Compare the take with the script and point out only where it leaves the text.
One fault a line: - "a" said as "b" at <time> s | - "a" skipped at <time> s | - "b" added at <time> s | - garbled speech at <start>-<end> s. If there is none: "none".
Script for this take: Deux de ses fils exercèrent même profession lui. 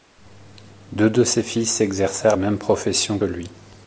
none